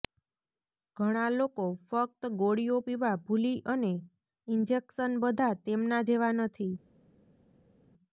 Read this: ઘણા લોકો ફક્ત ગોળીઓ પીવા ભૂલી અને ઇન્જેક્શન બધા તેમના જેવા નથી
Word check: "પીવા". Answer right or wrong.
right